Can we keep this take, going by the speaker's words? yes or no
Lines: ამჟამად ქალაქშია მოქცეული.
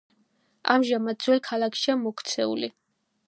no